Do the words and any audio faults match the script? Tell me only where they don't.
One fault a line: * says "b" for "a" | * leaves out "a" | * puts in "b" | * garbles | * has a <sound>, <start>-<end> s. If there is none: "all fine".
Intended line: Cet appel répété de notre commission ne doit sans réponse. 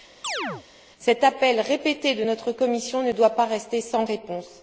* has a chirp, 0.2-0.6 s
* puts in "pas rester"